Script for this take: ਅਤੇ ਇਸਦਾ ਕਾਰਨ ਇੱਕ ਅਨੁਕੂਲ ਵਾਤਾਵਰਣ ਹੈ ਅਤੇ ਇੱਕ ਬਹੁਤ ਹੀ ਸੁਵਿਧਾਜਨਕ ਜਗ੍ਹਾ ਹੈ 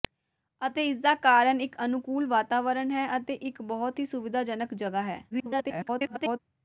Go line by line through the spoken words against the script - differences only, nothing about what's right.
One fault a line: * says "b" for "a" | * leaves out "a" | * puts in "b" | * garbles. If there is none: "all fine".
* garbles